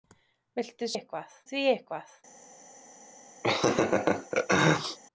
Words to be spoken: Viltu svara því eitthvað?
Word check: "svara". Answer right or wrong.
wrong